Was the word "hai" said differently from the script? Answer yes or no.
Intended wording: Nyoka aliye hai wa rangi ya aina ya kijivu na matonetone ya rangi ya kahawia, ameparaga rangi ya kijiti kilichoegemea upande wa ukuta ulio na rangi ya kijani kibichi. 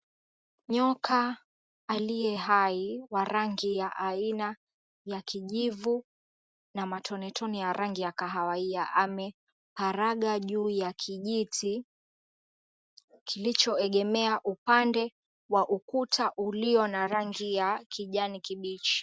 no